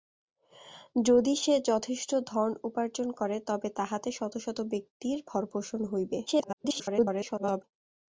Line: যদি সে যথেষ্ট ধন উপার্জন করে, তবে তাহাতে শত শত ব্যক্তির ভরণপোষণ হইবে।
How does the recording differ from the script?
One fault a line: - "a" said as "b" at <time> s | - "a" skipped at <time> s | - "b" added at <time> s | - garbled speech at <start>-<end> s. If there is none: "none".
- garbled speech at 6.3-7.6 s